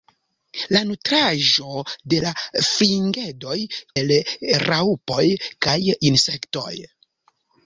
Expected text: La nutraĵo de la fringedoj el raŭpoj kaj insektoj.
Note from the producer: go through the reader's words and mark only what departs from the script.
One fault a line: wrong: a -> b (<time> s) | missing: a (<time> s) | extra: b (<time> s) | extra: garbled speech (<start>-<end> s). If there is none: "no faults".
no faults